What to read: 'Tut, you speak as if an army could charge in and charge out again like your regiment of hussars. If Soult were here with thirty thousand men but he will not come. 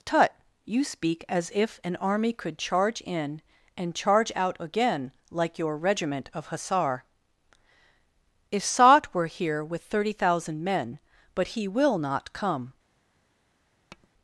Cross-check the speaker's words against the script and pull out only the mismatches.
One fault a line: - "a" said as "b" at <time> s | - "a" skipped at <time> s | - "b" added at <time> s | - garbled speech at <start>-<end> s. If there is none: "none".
- "hussars" said as "hussar" at 6.5 s